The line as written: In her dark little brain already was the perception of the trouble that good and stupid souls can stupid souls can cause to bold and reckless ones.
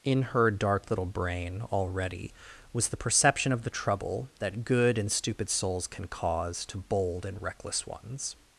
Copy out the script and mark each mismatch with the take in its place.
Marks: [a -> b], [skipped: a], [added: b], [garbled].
In her dark little brain already was the perception of the trouble that good and stupid souls can [skipped: stupid souls can] cause to bold and reckless ones.